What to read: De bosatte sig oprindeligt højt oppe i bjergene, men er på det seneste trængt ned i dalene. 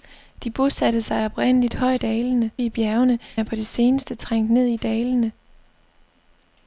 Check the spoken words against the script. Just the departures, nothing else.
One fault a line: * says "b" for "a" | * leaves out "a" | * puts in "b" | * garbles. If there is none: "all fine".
* says "dalene" for "oppe"
* leaves out "men"